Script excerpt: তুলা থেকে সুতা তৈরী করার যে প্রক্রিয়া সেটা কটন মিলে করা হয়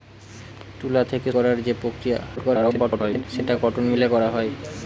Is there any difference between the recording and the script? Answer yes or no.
yes